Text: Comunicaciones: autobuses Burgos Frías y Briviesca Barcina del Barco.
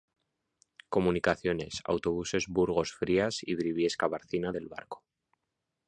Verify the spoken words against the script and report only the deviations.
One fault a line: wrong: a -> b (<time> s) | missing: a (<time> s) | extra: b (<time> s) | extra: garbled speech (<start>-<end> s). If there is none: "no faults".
no faults